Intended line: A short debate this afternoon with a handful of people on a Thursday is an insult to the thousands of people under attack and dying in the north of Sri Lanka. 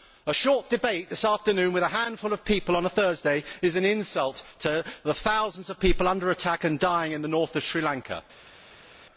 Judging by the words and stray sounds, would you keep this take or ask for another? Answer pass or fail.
pass